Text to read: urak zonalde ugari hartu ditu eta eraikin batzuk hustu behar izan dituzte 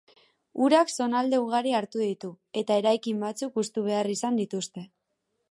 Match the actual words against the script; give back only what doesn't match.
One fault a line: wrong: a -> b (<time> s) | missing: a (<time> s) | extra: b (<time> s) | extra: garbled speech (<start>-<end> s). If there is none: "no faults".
no faults